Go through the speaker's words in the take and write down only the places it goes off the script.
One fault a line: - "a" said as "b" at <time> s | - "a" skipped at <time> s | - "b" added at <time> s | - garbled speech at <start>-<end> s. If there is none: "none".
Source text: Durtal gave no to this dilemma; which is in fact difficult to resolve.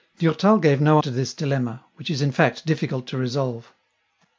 none